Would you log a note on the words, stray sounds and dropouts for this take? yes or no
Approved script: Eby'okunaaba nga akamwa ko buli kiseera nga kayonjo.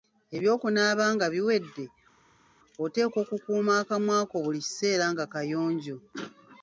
yes